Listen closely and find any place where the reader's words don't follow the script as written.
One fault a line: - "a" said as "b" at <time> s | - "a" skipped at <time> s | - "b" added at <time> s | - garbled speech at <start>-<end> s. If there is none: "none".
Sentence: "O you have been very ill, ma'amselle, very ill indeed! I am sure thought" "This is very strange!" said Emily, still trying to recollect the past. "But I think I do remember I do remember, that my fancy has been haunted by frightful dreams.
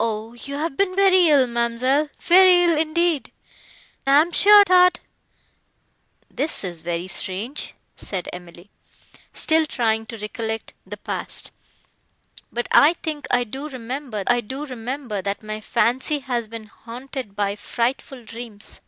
none